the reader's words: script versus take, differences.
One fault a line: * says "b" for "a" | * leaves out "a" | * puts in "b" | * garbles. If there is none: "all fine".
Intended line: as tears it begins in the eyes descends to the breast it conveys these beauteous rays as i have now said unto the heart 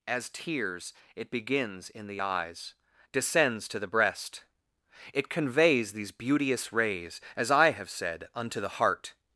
* leaves out "now"